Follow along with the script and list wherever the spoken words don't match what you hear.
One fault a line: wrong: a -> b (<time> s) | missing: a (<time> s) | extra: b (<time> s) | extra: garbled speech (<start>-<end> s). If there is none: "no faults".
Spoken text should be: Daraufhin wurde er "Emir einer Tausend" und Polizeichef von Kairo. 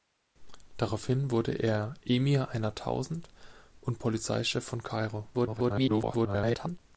extra: garbled speech (5.3-6.8 s)